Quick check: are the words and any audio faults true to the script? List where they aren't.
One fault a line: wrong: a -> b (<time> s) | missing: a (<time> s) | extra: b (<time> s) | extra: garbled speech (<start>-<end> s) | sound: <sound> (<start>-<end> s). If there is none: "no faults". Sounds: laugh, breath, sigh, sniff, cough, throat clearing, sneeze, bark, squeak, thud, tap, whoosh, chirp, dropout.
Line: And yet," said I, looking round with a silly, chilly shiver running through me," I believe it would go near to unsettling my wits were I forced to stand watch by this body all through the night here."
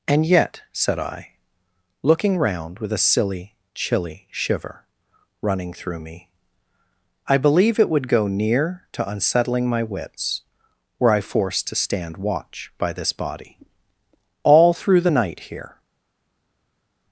no faults